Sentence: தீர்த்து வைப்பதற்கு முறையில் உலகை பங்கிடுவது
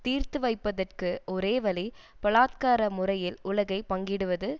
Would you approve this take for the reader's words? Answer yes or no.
no